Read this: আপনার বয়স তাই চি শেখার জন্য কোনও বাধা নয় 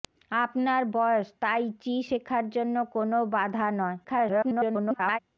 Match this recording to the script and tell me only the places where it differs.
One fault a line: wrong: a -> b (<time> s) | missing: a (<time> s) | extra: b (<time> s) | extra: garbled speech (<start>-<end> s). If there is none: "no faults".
extra: garbled speech (4.0-5.2 s)